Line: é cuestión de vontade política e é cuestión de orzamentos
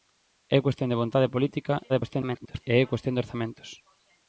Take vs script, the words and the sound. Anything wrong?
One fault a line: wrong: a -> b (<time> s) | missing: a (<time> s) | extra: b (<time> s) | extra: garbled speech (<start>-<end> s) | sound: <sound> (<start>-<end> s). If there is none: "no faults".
extra: garbled speech (1.9-2.6 s)